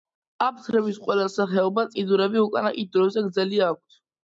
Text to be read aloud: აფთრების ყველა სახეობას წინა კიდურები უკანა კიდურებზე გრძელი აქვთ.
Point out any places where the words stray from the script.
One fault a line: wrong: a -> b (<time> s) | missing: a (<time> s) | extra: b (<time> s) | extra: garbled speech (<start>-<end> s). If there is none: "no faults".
missing: წინა (1.9 s)